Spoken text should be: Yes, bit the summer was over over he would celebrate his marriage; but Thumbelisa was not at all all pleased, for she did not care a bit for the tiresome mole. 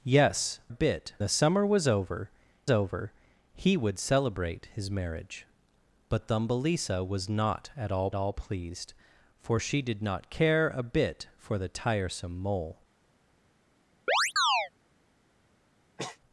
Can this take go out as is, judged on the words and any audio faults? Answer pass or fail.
fail